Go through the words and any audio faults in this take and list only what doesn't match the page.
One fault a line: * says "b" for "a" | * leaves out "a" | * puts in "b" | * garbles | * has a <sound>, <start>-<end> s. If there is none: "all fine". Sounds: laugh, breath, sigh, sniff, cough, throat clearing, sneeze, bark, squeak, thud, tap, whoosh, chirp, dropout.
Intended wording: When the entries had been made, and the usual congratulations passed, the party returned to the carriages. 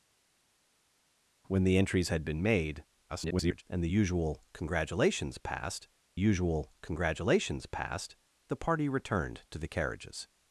* garbles
* puts in "usual congratulations passed"